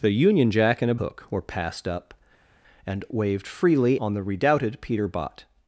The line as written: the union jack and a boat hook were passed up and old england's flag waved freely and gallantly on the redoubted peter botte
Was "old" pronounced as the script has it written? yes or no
no